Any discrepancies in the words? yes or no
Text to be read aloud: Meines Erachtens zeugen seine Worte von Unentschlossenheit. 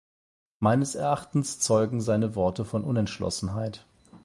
no